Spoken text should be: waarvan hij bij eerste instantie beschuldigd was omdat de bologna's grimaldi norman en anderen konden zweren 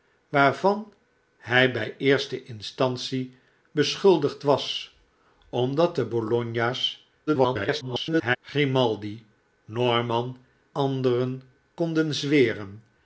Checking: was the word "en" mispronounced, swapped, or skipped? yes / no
yes